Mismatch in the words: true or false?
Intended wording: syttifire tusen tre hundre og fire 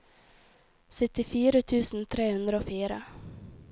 false